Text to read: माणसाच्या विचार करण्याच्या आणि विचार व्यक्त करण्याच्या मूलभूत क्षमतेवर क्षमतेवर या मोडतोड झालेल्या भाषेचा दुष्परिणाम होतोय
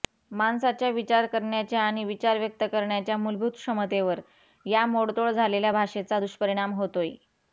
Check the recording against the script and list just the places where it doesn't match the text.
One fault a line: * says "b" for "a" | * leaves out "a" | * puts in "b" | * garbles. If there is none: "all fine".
* leaves out "क्षमतेवर"